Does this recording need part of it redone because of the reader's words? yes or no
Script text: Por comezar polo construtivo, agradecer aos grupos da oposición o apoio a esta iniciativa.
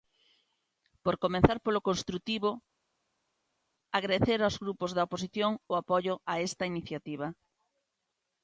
no